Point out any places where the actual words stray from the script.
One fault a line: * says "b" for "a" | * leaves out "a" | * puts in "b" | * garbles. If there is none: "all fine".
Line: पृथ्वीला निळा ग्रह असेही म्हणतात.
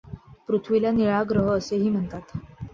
all fine